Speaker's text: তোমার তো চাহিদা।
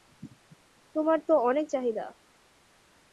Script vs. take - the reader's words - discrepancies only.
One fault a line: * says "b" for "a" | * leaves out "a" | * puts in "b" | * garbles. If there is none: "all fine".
* puts in "অনেক"